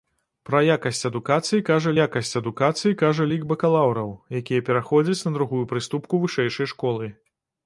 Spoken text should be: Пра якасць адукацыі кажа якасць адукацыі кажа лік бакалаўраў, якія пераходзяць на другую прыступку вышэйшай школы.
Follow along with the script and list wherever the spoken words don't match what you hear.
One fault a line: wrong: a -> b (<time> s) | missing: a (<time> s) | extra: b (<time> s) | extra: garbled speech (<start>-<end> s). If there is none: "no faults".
no faults